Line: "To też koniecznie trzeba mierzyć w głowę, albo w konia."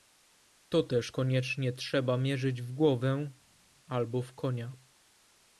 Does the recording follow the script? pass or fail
pass